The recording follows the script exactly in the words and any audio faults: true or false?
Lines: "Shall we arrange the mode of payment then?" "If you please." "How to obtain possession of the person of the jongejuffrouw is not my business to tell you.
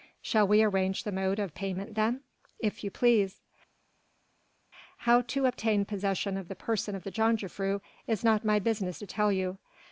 true